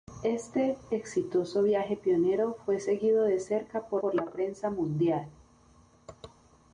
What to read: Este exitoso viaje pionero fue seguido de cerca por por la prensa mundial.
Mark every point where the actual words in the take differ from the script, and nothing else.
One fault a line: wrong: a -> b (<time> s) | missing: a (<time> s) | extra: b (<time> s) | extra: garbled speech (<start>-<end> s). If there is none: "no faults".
no faults